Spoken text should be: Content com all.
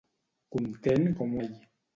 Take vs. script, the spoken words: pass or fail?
pass